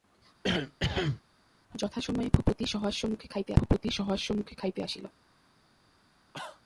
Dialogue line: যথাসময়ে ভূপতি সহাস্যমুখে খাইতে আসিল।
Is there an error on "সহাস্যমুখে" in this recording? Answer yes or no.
no